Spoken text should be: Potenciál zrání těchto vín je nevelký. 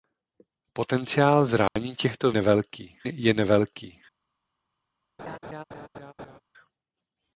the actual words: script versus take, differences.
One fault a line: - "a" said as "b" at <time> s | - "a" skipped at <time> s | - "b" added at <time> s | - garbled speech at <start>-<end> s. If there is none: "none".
- "vín" said as "nevelký" at 2.3 s